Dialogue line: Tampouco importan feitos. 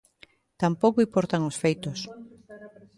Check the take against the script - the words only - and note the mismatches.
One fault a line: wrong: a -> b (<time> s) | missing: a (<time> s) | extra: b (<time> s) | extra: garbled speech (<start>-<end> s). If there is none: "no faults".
extra: os (1.5 s)